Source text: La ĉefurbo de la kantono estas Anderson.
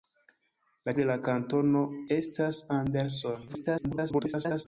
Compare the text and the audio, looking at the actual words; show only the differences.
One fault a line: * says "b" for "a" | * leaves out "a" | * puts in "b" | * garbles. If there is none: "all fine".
* leaves out "ĉefurbo"
* garbles